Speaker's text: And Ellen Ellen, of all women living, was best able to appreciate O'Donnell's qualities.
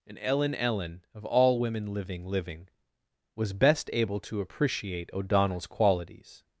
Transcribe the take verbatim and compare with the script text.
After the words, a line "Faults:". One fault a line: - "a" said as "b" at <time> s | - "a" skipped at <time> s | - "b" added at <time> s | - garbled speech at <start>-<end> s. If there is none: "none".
And Ellen Ellen, of all women living living, was best able to appreciate O'Donnell's qualities.
Faults:
- "living" added at 2.2 s